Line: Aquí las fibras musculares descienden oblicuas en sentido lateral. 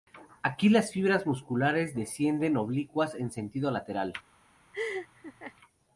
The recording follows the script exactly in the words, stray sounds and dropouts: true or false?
false